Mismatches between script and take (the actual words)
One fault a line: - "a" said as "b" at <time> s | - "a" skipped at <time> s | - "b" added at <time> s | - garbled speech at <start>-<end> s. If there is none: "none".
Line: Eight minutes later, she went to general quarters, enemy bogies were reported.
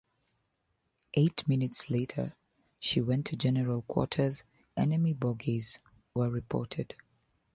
none